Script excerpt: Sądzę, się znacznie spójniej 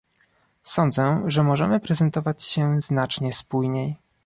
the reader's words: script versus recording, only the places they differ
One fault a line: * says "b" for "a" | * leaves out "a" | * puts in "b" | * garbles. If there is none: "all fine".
* puts in "że możemy prezentować"